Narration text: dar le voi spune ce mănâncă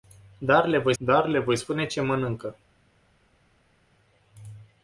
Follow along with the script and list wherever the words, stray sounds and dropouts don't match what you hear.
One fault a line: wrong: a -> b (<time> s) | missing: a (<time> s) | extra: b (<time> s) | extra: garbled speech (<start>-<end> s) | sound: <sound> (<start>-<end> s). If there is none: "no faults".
extra: dar le voi (1.0 s)